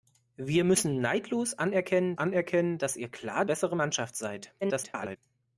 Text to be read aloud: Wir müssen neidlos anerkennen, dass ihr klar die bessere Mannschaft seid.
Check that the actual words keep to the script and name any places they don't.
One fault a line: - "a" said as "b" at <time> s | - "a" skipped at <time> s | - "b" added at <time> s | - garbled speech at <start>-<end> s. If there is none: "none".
- "anerkennen" added at 2.1 s
- "die" skipped at 3.4 s
- garbled speech at 4.6-5.2 s